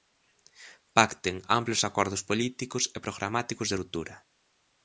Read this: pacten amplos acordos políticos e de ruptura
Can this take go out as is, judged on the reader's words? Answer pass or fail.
fail